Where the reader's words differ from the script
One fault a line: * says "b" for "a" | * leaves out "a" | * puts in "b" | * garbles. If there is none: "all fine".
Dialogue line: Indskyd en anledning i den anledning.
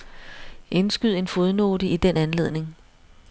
* says "fodnote" for "anledning"